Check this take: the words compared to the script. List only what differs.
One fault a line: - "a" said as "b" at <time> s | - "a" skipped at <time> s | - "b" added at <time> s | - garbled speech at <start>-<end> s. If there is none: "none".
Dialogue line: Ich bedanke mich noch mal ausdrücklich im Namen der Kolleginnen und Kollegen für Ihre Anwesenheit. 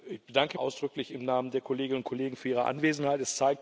- "mich noch mal" skipped at 0.6 s